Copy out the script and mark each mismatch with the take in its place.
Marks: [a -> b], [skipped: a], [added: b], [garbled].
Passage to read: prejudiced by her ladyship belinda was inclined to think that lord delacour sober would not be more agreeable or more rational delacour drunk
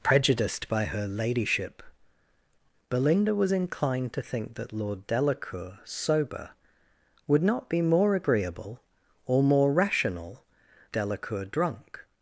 prejudiced by her ladyship belinda was inclined to think that lord delacour sober would not be more agreeable or more rational delacour drunk